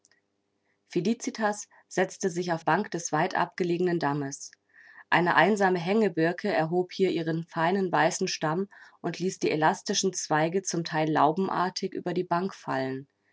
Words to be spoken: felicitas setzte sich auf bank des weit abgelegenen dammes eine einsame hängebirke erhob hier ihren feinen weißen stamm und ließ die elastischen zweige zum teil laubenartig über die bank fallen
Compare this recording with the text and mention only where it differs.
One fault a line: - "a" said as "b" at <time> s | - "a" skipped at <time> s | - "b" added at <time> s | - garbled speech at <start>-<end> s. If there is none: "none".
none